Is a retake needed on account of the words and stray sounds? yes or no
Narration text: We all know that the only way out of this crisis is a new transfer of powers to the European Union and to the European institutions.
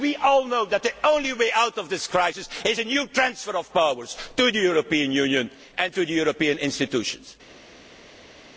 no